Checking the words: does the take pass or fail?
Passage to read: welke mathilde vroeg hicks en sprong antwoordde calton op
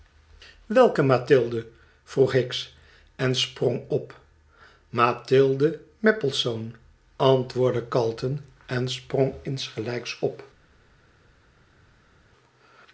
fail